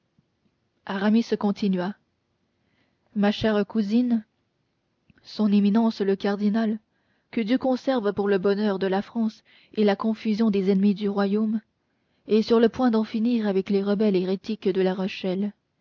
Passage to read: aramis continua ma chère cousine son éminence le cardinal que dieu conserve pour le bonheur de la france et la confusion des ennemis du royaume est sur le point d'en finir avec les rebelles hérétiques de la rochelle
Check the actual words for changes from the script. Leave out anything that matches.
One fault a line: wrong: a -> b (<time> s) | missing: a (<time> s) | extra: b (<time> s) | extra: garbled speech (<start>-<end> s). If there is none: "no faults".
no faults